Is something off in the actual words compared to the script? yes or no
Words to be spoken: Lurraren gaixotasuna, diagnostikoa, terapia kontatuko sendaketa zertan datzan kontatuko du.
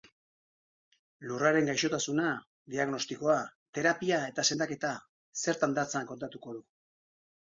yes